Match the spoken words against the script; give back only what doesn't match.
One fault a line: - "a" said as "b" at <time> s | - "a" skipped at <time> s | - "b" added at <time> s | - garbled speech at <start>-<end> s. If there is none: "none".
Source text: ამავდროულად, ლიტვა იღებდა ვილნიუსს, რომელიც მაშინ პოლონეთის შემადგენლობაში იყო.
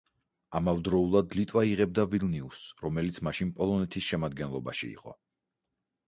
none